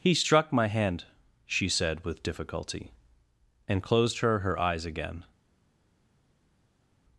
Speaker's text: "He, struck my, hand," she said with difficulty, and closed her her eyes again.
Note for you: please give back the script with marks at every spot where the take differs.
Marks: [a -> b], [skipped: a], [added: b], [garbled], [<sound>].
"He, struck my, hand," she said with difficulty, and closed her her eyes again.